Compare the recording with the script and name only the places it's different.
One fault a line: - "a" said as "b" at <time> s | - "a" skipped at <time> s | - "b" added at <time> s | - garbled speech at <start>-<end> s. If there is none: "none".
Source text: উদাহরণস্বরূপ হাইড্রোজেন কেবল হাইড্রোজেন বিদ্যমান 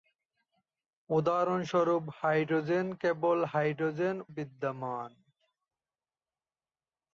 none